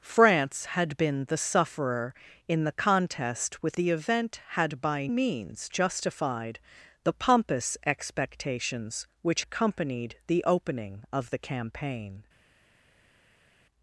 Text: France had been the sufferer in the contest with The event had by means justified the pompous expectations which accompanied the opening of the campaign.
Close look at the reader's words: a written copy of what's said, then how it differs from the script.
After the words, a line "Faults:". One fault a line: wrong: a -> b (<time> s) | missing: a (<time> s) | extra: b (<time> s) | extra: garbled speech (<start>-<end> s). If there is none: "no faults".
France had been the sufferer in the contest with The event had by means justified the pompous expectations which accompanied the opening of the campaign.
Faults:
no faults